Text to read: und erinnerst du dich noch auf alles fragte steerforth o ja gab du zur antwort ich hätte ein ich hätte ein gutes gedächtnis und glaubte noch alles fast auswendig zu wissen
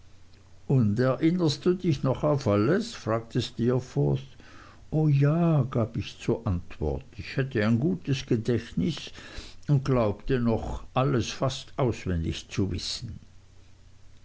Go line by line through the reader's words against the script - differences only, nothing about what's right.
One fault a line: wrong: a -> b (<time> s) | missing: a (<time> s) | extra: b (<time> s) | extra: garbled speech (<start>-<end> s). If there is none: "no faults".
wrong: du -> ich (6.0 s)
missing: ich hätte ein (7.8 s)